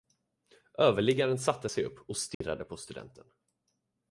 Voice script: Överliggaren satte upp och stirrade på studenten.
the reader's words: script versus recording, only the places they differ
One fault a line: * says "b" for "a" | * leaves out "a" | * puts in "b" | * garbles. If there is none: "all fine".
* puts in "sig"